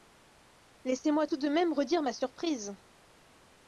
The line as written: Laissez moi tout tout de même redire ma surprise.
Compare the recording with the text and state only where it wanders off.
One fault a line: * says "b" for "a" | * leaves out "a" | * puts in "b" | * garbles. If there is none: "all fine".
* leaves out "tout"